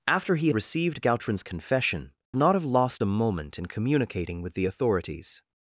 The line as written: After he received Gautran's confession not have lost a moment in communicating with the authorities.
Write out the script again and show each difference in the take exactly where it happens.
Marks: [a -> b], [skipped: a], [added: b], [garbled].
After he received Gautran's confession not have lost a moment in communicating with the authorities.